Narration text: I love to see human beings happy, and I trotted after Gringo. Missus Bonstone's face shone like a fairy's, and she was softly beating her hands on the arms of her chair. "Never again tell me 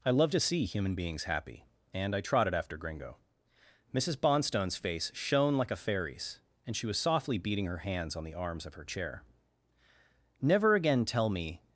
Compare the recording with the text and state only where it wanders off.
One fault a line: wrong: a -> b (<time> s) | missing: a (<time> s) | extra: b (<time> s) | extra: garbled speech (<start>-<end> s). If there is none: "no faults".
no faults